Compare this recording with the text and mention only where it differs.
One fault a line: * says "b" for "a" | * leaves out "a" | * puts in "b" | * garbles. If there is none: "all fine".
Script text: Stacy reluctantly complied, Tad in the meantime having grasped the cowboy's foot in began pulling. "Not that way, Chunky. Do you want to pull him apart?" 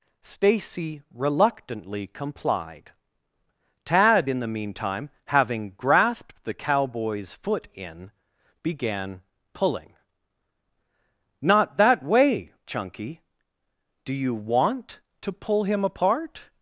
all fine